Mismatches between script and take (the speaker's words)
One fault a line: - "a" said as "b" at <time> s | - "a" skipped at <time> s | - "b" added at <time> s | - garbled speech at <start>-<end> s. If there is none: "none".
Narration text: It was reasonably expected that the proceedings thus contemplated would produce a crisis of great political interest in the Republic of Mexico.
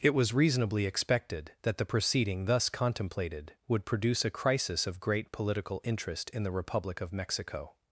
- "proceedings" said as "proceeding" at 1.8 s